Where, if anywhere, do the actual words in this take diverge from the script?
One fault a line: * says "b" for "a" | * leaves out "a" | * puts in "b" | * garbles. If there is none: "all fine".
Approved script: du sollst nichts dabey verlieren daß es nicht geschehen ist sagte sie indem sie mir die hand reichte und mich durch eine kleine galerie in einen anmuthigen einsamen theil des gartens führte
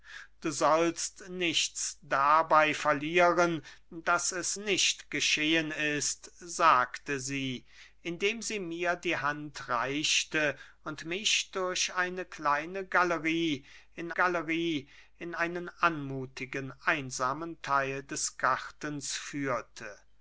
* puts in "galerie in"